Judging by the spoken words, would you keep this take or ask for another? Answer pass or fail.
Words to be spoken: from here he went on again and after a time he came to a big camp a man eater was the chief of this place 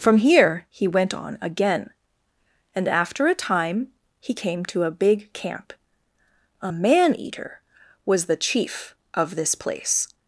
pass